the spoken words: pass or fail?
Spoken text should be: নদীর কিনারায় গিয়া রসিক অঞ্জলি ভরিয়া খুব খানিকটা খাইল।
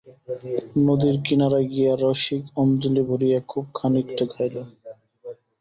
pass